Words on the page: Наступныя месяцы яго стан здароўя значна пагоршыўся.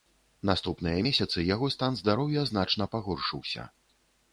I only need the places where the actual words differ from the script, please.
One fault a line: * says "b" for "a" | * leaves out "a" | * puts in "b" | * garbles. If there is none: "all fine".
all fine